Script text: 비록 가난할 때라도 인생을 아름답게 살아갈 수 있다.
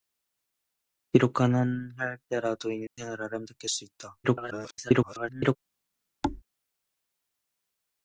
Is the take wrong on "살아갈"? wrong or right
wrong